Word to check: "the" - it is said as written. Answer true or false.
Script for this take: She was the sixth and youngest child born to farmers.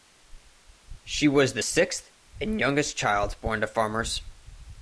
true